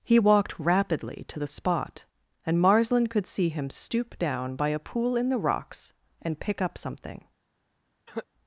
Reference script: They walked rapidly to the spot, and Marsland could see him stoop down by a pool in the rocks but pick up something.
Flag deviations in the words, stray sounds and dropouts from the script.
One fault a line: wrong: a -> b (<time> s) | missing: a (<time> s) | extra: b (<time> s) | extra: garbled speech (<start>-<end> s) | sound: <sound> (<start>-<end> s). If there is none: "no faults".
wrong: They -> He (0.0 s)
wrong: but -> and (6.2 s)
sound: cough (8.1-8.3 s)